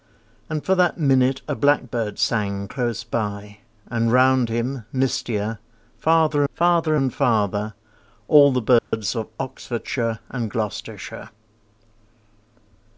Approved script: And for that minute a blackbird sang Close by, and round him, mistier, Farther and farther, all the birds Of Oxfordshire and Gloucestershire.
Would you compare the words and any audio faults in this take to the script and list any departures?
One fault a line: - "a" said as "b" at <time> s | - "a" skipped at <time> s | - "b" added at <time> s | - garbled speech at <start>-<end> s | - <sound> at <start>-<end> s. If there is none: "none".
- "Farther" added at 6.5 s
- dropout at 8.8-8.9 s